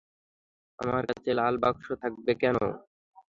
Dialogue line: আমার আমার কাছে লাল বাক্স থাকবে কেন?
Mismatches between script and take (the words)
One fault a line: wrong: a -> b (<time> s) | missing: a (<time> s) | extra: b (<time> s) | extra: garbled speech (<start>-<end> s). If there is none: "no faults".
missing: আমার (1.0 s)